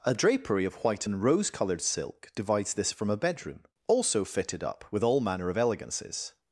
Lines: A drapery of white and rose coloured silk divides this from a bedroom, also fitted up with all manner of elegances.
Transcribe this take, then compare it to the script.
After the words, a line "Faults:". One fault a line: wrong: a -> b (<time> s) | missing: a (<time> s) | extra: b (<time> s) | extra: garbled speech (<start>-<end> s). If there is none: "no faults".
A drapery of white and rose coloured silk divides this from a bedroom, also fitted up with all manner of elegances.
Faults:
no faults